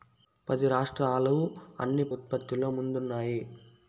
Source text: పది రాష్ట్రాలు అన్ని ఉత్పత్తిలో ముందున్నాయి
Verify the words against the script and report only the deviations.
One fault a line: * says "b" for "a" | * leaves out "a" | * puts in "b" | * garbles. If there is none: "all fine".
all fine